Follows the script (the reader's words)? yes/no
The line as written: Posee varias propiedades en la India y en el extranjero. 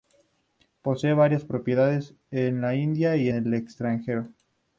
no